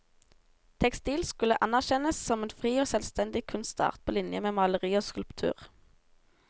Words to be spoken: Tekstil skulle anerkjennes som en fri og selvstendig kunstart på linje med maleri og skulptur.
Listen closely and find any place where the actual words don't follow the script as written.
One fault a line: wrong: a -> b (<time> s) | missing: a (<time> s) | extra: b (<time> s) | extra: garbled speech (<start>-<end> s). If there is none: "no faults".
no faults